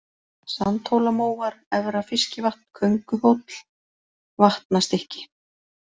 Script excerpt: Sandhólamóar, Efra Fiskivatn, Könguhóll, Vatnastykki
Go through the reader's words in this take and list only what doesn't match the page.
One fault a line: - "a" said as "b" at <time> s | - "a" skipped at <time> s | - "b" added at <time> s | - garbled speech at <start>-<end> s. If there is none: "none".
none